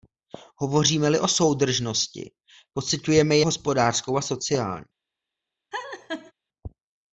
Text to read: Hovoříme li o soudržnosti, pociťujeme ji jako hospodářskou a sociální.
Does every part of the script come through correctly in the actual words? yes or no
no